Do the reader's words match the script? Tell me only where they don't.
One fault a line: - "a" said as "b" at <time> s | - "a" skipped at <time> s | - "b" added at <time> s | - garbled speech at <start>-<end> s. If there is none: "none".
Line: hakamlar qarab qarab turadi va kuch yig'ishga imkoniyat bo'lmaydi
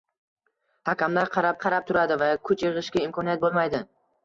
none